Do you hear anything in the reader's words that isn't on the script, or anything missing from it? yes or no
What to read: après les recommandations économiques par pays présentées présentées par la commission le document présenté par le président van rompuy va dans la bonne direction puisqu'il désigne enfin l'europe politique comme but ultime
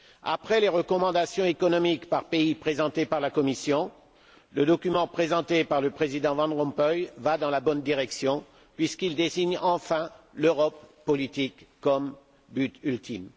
yes